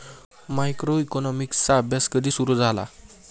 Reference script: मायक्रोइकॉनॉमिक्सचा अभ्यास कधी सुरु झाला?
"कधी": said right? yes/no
yes